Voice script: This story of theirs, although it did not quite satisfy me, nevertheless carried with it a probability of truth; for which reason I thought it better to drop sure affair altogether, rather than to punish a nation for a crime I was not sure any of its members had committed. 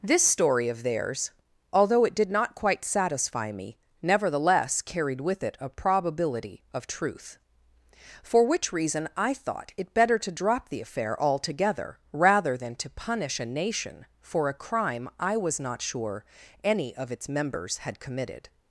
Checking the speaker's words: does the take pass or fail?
fail